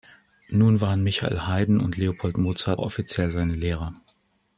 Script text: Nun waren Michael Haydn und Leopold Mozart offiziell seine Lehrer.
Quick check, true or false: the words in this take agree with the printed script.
true